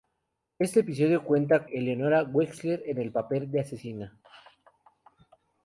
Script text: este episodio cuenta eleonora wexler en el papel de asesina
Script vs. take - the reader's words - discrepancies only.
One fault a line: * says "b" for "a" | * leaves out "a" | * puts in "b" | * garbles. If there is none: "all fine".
all fine